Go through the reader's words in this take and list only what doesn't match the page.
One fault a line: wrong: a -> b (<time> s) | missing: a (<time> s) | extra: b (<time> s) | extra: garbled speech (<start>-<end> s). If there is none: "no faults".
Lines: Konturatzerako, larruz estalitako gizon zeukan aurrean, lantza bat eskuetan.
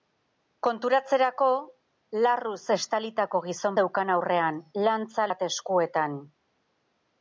no faults